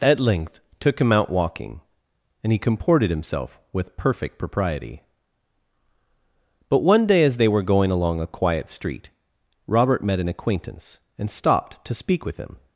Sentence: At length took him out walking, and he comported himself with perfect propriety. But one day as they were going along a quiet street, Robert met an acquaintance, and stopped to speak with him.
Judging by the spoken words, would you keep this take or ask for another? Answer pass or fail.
pass